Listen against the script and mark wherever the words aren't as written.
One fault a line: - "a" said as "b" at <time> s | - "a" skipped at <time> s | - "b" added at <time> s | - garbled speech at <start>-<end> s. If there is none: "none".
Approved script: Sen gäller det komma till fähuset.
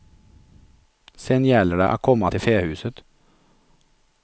- "att" added at 1.9 s